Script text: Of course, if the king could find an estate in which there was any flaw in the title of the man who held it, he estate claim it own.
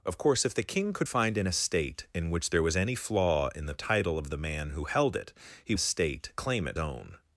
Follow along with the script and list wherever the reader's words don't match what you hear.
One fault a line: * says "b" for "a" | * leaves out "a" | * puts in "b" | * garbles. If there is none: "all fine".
all fine